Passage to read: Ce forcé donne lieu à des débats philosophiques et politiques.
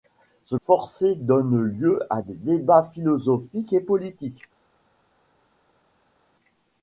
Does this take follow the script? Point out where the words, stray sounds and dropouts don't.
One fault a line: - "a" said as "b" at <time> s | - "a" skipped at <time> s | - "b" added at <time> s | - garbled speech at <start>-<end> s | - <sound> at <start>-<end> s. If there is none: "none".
none